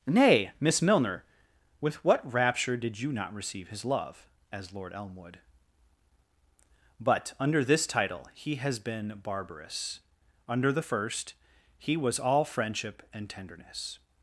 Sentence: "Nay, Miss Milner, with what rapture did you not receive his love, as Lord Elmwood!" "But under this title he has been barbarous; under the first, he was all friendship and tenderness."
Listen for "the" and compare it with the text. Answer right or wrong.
right